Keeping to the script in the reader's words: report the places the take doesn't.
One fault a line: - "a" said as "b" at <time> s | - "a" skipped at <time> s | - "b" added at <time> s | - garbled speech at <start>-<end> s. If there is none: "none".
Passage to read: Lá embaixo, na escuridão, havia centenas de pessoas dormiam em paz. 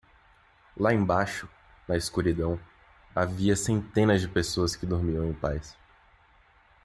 - "que" added at 4.8 s